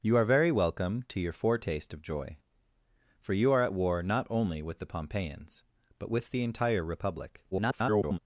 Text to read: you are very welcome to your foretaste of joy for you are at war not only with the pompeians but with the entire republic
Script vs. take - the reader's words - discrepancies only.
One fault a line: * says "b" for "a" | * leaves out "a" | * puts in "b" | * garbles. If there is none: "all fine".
* garbles